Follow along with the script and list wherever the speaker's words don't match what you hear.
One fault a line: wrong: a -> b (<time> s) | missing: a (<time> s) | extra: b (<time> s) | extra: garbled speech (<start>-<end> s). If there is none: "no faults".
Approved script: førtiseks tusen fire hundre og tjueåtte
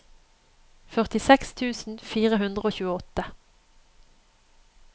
no faults